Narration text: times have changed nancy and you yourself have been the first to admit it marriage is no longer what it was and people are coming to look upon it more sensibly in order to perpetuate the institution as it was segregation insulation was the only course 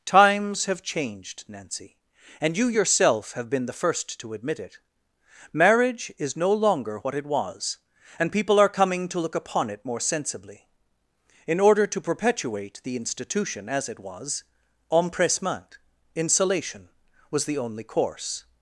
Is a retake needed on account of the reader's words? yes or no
yes